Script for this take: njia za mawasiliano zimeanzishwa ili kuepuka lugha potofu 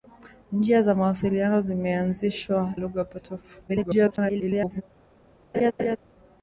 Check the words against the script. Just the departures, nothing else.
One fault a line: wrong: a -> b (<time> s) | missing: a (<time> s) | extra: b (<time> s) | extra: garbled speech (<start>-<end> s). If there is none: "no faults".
missing: ili kuepuka (2.7 s)
extra: garbled speech (3.7-4.8 s)